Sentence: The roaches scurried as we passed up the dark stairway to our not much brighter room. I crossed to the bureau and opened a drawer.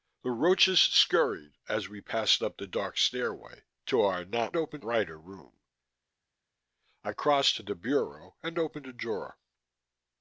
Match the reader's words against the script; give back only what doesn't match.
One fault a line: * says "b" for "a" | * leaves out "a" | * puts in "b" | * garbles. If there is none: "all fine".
* says "opened" for "much"